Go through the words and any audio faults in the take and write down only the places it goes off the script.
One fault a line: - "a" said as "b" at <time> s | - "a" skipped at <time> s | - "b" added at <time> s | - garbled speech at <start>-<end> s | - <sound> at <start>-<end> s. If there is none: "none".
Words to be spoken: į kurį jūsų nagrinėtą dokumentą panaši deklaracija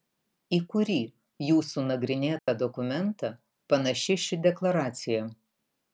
- dropout at 2.4-2.5 s
- "ši" added at 4.3 s